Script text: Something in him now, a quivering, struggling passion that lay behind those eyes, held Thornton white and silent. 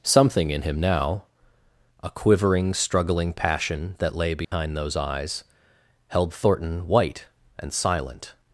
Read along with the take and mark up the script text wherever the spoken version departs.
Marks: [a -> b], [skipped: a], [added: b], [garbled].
Something in him now, a quivering, struggling passion that lay behind those eyes, held Thornton white and silent.